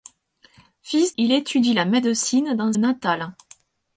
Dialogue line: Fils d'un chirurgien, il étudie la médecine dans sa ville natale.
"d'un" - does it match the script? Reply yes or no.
no